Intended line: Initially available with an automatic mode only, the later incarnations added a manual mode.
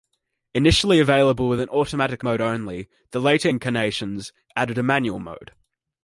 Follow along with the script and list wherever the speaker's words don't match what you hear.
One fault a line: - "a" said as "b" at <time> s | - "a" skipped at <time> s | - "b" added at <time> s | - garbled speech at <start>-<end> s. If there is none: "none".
none